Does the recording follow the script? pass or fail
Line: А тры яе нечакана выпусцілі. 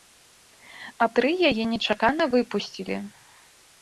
pass